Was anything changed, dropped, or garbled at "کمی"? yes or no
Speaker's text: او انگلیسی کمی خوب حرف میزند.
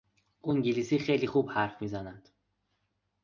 yes